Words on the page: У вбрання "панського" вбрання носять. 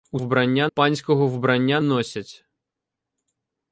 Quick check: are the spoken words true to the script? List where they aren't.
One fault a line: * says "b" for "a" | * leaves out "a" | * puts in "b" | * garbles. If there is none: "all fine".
all fine